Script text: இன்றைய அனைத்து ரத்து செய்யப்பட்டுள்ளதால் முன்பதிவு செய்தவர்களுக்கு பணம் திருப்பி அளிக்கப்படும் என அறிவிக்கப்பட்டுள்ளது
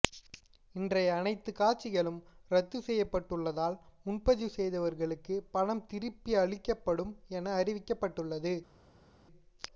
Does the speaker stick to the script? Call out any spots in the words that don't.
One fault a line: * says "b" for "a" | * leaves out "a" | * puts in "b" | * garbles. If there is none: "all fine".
* puts in "காட்சிகளும்"